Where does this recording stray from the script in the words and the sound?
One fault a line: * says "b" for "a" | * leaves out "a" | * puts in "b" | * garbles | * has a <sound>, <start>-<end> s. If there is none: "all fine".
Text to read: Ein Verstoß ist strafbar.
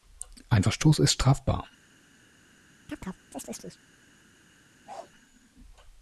* has a chirp, 2.9-3.8 s
* has a bark, 4.9-5.1 s